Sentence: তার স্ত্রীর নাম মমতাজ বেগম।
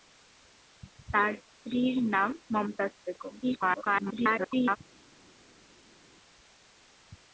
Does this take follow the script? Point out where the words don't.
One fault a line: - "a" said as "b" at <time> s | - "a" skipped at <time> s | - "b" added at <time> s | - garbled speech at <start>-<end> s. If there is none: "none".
- garbled speech at 3.4-4.8 s